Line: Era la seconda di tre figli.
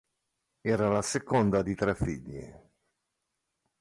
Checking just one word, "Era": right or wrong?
right